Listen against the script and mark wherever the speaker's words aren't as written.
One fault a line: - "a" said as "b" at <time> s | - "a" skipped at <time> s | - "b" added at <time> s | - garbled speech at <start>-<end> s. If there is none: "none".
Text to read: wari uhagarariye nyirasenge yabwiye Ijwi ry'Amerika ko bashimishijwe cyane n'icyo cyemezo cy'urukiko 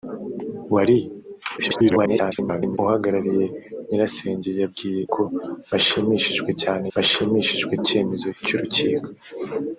- garbled speech at 1.6-2.8 s
- "Ijwi ry'Amerika" skipped at 5.0 s
- "n'icyo" said as "bashimishijwe" at 6.9 s